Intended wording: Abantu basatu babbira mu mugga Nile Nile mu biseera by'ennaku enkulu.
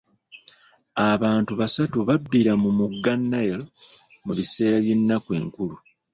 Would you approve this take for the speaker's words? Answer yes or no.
no